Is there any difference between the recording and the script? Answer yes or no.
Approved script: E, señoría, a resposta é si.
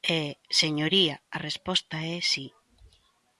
no